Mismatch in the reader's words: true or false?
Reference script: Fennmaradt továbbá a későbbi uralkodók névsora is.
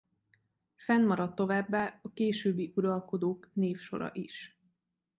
false